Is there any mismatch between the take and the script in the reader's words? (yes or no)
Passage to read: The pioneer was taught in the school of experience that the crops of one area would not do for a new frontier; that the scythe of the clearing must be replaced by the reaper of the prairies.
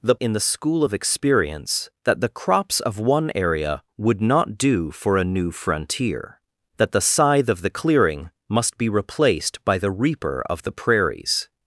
yes